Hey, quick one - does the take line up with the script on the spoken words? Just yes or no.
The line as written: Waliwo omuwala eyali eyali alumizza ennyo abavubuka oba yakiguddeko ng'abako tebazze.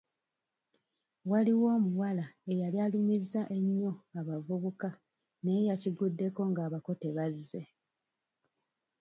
no